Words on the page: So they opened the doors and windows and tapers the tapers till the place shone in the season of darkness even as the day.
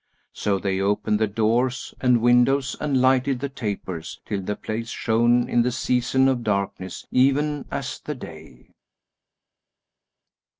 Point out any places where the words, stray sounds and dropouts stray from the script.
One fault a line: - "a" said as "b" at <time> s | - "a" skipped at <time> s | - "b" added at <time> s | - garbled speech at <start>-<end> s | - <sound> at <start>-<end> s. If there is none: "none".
- "tapers" said as "lighted" at 3.0 s